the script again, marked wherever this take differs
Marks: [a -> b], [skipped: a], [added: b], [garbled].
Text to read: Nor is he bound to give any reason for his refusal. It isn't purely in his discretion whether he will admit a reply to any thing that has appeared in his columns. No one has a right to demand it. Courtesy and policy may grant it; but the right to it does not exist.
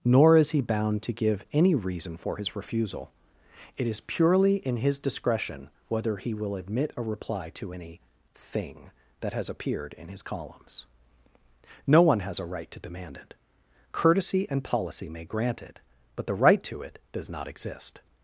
Nor is he bound to give any reason for his refusal. It [isn't -> is] purely in his discretion whether he will admit a reply to any thing that has appeared in his columns. No one has a right to demand it. Courtesy and policy may grant it; but the right to it does not exist.